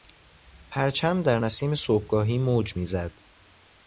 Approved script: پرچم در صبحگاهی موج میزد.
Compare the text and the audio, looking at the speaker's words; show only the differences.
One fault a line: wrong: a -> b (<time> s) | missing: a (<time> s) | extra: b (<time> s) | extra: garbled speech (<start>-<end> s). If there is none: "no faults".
extra: نسیم (1.4 s)